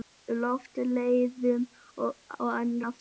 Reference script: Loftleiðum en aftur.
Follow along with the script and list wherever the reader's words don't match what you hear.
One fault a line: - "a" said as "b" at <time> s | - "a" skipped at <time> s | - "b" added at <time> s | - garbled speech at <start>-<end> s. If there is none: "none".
none